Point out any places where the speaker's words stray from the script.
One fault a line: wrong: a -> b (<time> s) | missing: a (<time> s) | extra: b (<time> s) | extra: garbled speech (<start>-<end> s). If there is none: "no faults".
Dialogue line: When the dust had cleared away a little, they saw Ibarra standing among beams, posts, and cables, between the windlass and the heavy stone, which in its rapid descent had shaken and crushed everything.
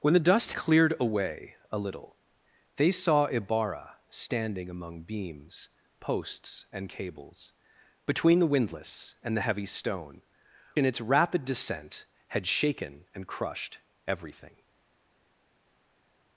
missing: had (0.5 s)
missing: which (10.2 s)